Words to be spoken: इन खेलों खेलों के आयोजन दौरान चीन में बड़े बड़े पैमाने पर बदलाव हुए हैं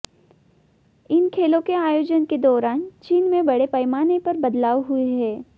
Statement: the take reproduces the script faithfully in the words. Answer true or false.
false